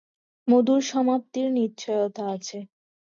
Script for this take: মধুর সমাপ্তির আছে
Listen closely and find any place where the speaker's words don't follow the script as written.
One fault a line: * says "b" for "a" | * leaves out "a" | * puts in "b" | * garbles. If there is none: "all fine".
* puts in "নিশ্চয়তা"